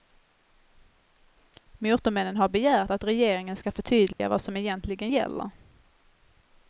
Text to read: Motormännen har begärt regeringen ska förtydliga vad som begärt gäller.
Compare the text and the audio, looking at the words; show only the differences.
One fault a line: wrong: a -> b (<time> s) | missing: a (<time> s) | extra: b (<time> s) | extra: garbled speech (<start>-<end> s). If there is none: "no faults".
extra: att (2.9 s)
wrong: begärt -> egentligen (4.6 s)